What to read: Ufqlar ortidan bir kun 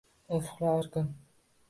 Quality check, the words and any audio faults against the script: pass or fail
fail